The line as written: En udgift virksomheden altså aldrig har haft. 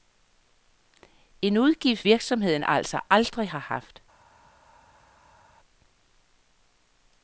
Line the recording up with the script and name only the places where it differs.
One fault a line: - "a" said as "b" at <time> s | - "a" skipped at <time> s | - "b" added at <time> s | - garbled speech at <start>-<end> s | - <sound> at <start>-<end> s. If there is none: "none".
none